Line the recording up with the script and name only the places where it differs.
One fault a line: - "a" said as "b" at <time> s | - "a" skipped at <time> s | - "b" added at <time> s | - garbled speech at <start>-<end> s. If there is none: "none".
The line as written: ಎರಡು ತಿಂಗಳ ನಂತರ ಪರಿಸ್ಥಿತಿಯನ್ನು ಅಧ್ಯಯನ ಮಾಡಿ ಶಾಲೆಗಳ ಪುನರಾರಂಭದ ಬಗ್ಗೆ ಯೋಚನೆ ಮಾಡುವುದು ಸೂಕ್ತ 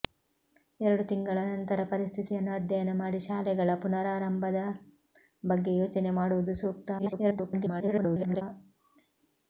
- garbled speech at 7.0-8.4 s